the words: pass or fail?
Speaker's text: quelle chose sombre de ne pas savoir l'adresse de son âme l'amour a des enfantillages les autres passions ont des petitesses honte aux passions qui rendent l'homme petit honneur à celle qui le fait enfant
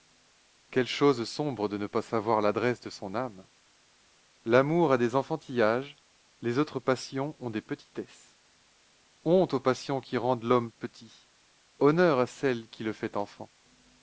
pass